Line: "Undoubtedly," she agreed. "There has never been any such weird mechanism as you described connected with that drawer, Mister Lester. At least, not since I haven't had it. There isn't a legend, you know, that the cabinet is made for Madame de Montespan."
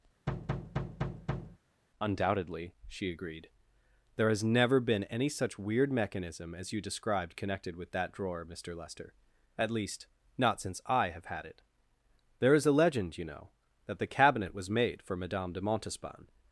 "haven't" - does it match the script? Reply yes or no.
no